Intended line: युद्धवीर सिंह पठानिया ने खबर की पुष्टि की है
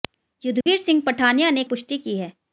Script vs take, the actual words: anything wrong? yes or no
yes